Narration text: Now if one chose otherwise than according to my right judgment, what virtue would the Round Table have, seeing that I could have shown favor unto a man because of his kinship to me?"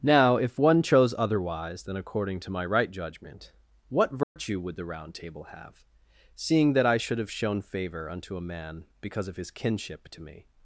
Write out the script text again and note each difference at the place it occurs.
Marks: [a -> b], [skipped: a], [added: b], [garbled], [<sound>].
Now if one chose otherwise than according to my right judgment, what virtue [dropout] would the Round Table have, seeing that I [could -> should] have shown favor unto a man because of his kinship to me?"